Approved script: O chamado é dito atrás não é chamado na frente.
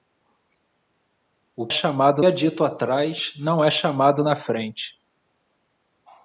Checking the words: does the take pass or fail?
pass